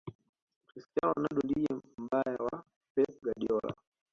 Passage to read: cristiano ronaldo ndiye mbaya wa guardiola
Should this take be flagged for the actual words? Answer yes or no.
yes